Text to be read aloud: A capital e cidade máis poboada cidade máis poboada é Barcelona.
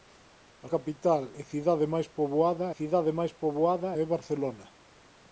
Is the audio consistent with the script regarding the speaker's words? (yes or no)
yes